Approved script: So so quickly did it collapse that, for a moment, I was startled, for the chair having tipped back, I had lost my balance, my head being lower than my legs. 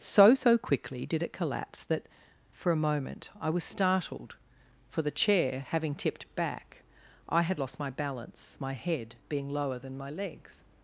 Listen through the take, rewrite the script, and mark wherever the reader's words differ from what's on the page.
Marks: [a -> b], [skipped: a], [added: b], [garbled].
So so quickly did it collapse that, for a moment, I was startled, for the chair having tipped back, I had lost my balance, my head being lower than my legs.